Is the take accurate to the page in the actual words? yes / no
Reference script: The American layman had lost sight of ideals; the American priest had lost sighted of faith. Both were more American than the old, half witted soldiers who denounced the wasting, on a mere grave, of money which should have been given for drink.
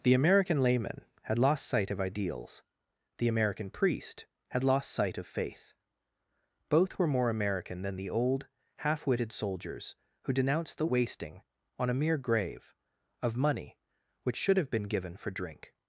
no